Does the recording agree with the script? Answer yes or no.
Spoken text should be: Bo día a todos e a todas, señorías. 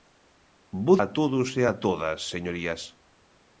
no